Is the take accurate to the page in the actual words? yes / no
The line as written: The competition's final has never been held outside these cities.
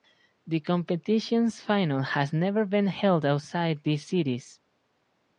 yes